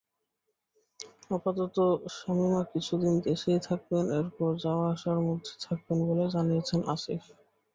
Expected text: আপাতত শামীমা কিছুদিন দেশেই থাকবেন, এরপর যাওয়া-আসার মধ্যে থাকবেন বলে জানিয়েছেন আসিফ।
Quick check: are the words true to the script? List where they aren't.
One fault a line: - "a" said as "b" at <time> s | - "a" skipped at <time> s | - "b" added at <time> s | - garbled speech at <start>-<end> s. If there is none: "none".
none